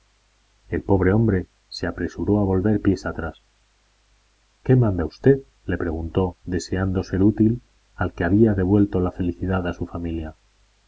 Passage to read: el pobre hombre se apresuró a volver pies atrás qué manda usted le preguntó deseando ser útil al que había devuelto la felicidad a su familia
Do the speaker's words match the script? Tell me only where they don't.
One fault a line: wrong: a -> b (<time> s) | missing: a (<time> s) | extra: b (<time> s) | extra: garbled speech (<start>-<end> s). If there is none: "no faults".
no faults